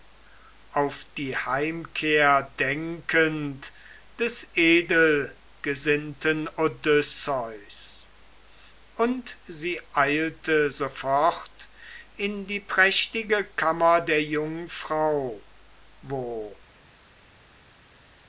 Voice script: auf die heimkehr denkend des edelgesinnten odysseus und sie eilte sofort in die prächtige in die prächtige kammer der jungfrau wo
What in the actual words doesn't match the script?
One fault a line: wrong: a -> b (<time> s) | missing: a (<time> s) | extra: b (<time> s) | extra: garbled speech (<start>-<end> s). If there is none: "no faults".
missing: in die prächtige (13.4 s)